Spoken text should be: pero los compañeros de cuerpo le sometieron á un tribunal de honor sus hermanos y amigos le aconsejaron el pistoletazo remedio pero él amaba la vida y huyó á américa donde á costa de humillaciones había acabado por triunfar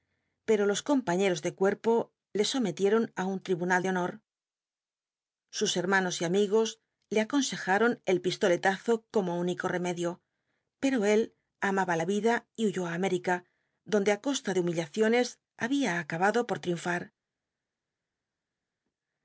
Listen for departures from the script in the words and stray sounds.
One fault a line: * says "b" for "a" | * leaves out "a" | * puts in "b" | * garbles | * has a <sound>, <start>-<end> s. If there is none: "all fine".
* puts in "como único"